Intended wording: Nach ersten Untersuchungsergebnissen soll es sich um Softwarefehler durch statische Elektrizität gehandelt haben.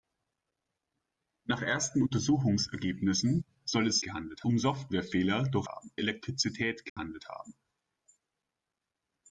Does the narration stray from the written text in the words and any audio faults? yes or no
yes